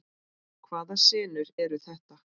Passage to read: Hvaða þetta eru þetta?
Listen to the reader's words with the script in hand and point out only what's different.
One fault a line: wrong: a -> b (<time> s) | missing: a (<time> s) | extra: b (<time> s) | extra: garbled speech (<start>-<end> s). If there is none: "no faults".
wrong: þetta -> senur (1.1 s)